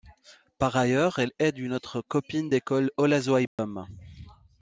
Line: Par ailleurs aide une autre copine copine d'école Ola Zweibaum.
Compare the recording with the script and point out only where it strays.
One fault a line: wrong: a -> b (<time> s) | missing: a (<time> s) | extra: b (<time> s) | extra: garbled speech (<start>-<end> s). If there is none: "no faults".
extra: elle (1.2 s)
missing: copine (2.5 s)